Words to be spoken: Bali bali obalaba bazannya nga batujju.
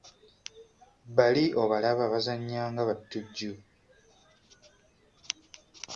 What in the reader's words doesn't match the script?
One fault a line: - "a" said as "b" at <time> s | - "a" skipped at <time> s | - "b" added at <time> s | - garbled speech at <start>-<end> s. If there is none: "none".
- "bali" skipped at 1.4 s